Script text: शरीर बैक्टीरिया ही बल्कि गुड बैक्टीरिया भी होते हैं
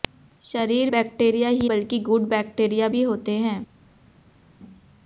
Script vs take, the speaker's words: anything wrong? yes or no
no